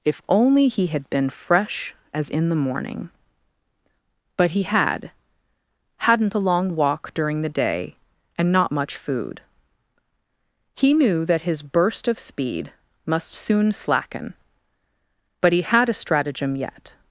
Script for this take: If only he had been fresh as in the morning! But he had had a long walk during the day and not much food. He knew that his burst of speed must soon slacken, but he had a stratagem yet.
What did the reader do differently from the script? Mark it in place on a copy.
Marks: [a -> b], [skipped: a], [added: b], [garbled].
If only he had been fresh as in the morning! But he had [had -> hadn't] a long walk during the day and not much food. He knew that his burst of speed must soon slacken, but he had a stratagem yet.